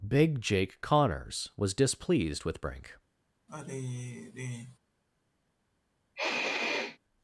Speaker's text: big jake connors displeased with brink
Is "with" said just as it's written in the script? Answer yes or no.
yes